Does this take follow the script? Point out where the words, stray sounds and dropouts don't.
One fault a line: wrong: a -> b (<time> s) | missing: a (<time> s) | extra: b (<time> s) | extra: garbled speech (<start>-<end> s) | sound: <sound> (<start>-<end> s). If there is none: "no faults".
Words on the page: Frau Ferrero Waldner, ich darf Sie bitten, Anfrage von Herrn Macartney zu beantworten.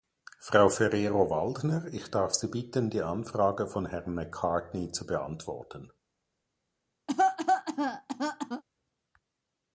extra: die (2.9 s)
sound: cough (7.1-8.6 s)